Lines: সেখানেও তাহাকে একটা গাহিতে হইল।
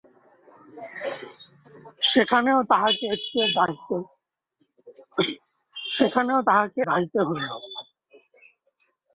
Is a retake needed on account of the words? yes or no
yes